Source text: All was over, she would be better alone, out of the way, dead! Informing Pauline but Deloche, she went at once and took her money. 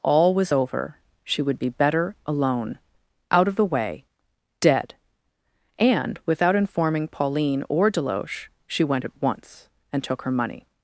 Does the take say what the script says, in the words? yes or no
no